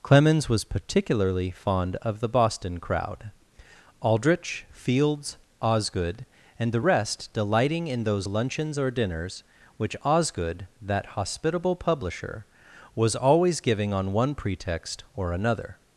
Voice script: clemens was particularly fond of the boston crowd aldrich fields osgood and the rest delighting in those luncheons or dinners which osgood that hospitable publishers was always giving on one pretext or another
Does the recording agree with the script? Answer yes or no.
no